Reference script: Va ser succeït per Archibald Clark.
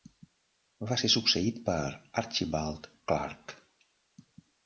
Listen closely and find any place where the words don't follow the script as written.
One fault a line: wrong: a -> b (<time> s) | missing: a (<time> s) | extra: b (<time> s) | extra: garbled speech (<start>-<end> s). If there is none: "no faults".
no faults